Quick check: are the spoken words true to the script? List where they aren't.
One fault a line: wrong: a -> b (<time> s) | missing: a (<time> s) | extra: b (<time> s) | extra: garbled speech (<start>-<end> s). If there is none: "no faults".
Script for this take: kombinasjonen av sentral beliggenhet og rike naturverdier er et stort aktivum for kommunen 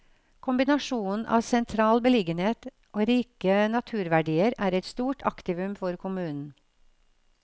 no faults